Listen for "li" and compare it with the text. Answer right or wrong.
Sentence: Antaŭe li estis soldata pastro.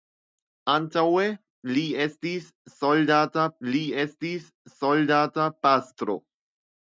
right